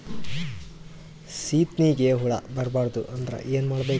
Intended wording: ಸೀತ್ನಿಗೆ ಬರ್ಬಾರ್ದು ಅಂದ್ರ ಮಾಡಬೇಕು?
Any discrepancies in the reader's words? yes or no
yes